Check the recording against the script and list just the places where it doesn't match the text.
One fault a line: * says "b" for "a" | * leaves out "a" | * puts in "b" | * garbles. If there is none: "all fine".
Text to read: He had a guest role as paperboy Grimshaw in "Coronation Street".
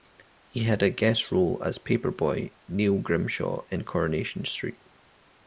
* puts in "Neil"